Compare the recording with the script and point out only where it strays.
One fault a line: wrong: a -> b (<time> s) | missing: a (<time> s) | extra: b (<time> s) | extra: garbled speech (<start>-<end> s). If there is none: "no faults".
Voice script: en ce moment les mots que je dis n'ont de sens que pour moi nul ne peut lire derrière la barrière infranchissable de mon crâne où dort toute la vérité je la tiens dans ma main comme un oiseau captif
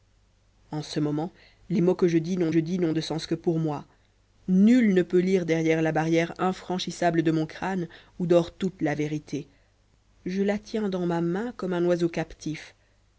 extra: je dis n'ont (2.5 s)